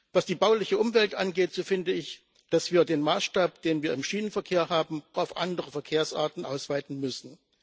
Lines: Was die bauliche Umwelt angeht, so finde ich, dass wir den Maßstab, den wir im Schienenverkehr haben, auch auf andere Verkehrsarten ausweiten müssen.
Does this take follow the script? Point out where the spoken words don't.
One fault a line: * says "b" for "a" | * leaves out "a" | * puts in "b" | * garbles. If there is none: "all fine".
* leaves out "auch"